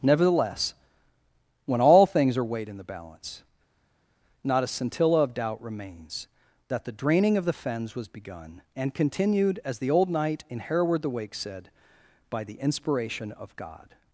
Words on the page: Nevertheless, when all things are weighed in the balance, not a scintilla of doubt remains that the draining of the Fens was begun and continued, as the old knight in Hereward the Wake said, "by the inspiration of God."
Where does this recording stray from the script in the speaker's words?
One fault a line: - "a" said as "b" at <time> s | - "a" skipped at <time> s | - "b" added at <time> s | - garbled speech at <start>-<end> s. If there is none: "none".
none